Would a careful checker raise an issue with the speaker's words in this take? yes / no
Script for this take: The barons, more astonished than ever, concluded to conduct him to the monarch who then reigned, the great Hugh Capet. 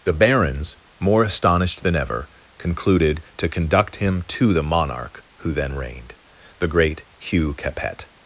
no